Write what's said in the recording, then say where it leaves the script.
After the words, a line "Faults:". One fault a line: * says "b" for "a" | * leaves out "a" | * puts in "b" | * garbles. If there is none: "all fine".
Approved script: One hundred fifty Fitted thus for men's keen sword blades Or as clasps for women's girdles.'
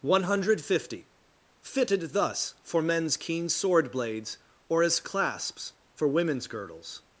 One hundred fifty Fitted thus for men's keen sword blades Or as clasps for women's girdles.'
Faults:
all fine